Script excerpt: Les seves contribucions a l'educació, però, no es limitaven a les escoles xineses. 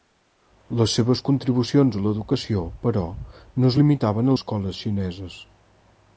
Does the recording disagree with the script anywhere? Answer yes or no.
yes